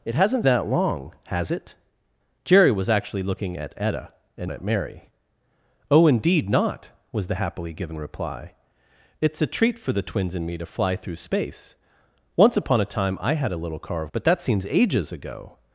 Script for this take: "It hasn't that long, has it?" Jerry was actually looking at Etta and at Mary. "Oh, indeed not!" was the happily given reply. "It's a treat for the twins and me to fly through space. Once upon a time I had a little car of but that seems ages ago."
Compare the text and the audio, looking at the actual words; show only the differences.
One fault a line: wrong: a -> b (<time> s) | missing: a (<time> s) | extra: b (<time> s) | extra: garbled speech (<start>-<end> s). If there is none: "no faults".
no faults